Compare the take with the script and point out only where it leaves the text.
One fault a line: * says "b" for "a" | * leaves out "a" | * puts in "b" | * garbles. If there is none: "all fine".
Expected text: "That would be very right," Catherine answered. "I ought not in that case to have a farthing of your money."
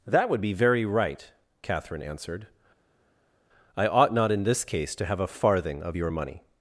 * says "this" for "that"